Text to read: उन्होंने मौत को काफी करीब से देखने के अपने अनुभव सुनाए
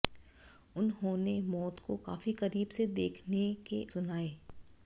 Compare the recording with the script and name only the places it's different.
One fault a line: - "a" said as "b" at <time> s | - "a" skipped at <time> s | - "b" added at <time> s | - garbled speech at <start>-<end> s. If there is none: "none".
- "अपने अनुभव" skipped at 3.8 s